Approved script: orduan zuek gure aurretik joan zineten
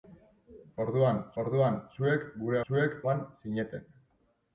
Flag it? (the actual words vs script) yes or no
yes